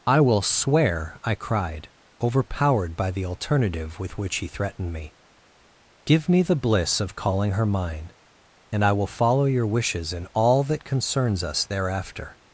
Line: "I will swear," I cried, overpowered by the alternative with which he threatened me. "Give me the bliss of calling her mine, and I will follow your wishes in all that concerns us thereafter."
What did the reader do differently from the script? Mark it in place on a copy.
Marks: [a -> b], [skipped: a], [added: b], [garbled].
"I will swear," I cried, overpowered by the alternative with which he threatened me. "Give me the bliss of calling her mine, and I will follow your wishes in all that concerns us thereafter."